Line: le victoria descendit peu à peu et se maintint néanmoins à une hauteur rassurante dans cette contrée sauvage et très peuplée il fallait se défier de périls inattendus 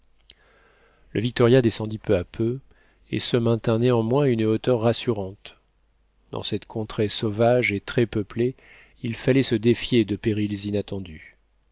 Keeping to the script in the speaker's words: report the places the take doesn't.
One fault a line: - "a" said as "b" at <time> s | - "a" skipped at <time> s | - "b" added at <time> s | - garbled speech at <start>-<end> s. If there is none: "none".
none